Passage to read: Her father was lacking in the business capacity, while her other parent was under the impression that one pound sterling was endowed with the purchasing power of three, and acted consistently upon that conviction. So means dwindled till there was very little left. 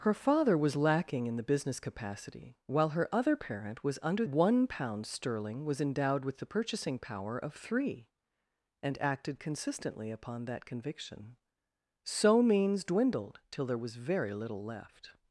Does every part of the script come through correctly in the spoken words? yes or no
no